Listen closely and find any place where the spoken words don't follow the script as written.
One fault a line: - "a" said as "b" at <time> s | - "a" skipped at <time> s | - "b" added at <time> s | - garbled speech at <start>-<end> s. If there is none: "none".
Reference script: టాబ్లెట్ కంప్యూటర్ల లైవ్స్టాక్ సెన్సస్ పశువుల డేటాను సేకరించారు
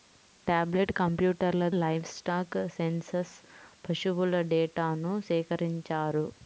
none